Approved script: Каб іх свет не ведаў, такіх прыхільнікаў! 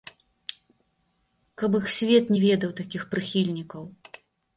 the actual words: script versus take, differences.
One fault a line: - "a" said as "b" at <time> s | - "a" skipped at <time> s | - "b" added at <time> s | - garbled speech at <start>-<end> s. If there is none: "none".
none